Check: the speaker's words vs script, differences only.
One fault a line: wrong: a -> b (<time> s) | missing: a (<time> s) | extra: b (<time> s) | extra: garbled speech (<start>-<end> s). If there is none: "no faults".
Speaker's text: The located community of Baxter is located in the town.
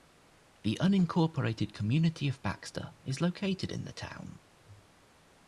wrong: located -> unincorporated (0.8 s)